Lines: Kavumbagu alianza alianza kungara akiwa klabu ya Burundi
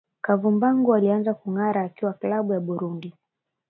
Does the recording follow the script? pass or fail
fail